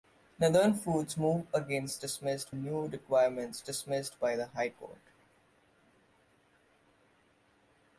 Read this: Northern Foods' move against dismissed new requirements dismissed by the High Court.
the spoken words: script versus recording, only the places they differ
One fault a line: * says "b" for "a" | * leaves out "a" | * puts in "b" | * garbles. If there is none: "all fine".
all fine